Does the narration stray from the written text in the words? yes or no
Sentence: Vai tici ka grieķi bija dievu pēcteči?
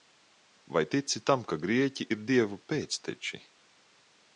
yes